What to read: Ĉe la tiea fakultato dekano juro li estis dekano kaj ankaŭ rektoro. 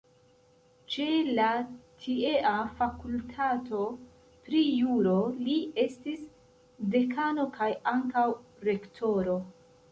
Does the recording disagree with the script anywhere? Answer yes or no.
yes